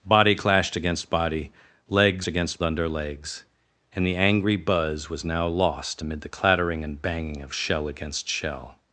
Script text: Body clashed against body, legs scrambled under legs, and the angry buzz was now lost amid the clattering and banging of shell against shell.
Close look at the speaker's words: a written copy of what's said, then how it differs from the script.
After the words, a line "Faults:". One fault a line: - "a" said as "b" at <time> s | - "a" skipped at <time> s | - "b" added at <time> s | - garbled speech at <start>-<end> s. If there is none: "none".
Body clashed against body, legs against under legs, and the angry buzz was now lost amid the clattering and banging of shell against shell.
Faults:
- "scrambled" said as "against" at 2.3 s